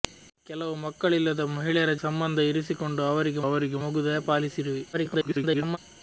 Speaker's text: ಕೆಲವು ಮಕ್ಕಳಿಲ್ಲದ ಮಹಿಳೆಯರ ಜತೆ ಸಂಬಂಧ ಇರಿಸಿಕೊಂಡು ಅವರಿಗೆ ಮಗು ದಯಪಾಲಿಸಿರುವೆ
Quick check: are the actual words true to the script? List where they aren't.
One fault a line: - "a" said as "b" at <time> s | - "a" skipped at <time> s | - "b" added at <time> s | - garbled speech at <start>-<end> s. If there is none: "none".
- "ಜತೆ" skipped at 1.9 s
- "ಅವರಿಗೆ" added at 3.5 s
- garbled speech at 4.9-5.8 s